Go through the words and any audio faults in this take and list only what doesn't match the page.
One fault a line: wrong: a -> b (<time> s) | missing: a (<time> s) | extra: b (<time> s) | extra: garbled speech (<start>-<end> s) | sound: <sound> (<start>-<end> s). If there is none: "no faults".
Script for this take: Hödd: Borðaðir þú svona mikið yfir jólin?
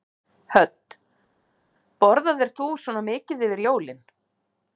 no faults